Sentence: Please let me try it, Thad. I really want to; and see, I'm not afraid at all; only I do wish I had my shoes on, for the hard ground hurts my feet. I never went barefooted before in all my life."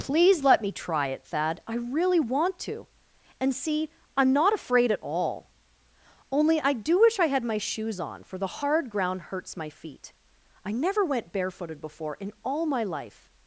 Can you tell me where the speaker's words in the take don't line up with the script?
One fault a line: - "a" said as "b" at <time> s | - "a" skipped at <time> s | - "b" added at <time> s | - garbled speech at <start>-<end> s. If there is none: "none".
none